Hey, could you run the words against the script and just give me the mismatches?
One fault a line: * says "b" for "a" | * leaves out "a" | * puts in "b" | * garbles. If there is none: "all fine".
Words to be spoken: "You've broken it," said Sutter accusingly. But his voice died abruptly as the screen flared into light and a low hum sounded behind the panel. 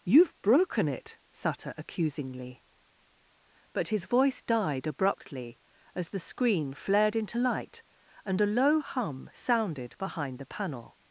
* leaves out "said"